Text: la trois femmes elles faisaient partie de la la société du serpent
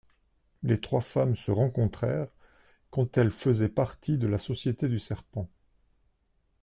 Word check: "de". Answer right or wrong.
right